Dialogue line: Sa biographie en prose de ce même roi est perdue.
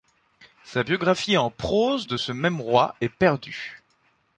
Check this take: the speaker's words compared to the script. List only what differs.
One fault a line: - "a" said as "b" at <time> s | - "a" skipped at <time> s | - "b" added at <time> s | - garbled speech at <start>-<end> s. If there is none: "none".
none